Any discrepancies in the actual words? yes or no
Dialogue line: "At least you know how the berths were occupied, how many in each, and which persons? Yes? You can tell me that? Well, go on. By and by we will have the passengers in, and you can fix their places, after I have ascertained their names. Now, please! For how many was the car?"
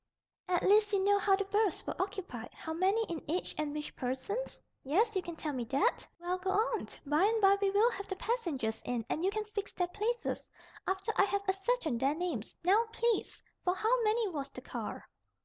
no